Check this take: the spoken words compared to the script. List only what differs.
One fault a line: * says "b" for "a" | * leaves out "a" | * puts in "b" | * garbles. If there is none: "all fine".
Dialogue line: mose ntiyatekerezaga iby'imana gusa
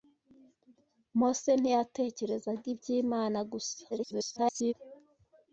* garbles